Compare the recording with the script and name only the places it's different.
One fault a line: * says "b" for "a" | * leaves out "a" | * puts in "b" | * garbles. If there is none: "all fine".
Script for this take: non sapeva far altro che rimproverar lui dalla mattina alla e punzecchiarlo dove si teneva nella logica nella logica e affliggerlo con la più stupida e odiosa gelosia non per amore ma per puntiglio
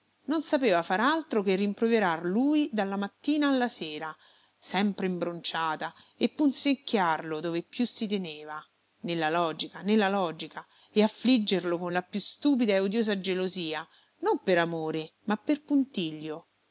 * puts in "sera sempre imbronciata"
* puts in "più"